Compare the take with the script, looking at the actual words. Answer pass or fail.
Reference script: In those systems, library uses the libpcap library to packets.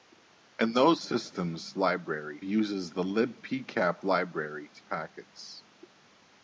pass